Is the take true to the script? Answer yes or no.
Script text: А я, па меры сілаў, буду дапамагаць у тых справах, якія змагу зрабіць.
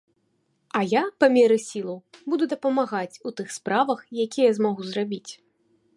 yes